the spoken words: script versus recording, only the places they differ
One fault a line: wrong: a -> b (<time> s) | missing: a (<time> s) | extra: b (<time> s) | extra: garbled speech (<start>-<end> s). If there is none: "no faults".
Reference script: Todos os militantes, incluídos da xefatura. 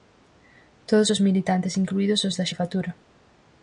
extra: os (2.2 s)